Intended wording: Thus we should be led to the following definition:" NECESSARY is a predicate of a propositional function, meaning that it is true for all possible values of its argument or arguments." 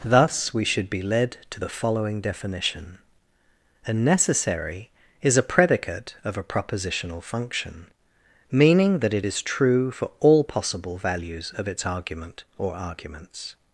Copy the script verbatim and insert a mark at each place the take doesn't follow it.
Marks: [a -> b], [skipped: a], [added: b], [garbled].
Thus we should be led to the following definition:" [added: a] NECESSARY is a predicate of a propositional function, meaning that it is true for all possible values of its argument or arguments."